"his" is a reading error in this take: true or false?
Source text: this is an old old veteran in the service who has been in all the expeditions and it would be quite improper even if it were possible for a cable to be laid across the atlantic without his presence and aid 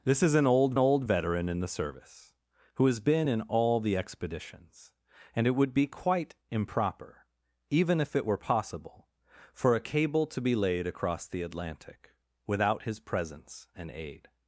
false